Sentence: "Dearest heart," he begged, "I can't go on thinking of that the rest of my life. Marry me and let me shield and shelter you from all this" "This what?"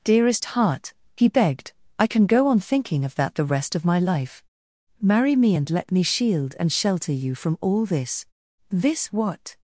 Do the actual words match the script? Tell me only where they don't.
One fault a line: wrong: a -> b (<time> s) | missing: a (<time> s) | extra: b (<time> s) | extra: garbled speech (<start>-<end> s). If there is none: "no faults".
wrong: can't -> can (2.1 s)